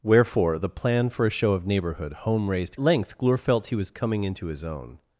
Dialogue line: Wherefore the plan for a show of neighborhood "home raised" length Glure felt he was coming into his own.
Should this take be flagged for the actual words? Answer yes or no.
no